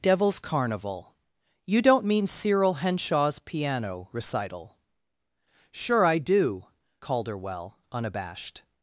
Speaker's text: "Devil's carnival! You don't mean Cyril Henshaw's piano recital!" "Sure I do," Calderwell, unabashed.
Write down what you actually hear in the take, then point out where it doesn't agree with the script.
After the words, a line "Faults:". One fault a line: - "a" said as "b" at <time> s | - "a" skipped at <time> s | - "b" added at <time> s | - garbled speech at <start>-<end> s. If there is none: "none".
"Devil's carnival! You don't mean Cyril Henshaw's piano recital!" "Sure I do," Calderwell, unabashed.
Faults:
none